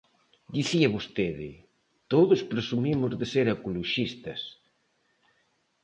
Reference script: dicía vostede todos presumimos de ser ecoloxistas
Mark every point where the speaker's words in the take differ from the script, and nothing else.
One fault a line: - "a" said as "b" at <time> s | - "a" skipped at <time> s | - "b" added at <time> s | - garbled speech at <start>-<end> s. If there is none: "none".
none